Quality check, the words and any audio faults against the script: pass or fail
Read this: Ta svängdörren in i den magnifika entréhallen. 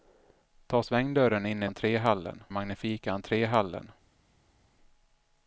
fail